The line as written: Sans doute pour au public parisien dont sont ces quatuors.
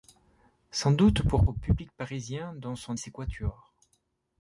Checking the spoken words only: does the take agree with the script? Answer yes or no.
yes